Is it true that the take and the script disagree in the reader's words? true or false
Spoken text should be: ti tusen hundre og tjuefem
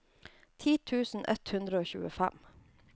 true